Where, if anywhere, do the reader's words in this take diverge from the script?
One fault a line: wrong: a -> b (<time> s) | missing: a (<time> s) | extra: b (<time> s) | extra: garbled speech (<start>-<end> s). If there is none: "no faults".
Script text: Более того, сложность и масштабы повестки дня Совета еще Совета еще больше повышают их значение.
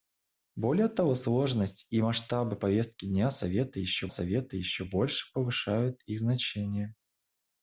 no faults